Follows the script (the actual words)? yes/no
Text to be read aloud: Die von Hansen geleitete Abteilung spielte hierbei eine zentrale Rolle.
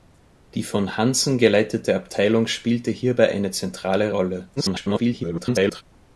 no